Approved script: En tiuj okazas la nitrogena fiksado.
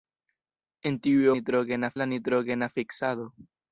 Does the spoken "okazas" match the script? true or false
false